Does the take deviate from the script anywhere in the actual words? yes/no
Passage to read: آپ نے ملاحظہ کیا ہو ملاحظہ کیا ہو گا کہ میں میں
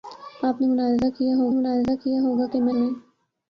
no